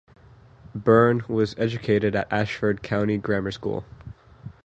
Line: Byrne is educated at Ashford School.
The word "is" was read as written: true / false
false